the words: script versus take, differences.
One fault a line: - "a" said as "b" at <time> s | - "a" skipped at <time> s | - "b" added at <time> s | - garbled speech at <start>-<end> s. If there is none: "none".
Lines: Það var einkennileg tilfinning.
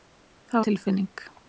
- "var einkennileg" skipped at 0.7 s